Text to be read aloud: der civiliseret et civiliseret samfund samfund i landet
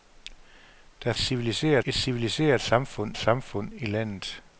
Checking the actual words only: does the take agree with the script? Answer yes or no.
yes